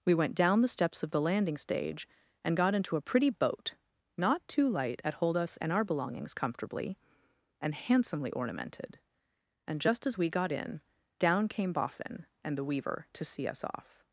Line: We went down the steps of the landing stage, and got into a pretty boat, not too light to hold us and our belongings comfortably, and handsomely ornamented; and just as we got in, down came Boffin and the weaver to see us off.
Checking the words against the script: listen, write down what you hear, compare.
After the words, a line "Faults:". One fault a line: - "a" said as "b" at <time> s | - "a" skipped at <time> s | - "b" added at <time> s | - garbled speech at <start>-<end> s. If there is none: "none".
We went down the steps of the landing stage, and got into a pretty boat, not too light at hold us and our belongings comfortably, and handsomely ornamented; and just as we got in, down came Boffin and the weaver to see us off.
Faults:
- "to" said as "at" at 5.0 s